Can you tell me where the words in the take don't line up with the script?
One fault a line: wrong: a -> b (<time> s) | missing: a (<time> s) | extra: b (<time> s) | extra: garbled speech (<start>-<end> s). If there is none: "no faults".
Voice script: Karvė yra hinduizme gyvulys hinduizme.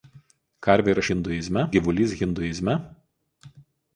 no faults